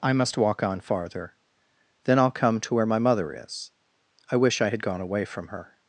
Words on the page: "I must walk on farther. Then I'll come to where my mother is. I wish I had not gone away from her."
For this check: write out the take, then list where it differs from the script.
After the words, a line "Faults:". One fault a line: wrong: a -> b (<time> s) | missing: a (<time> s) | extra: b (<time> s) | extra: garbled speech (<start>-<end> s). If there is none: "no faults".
"I must walk on farther. Then I'll come to where my mother is. I wish I had gone away from her."
Faults:
missing: not (4.8 s)